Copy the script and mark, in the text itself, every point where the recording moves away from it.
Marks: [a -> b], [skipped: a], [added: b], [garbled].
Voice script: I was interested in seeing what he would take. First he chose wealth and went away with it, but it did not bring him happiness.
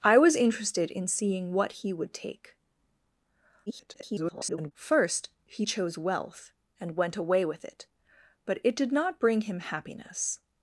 I was interested in seeing what he would take. [garbled] First he chose wealth and went away with it, but it did not bring him happiness.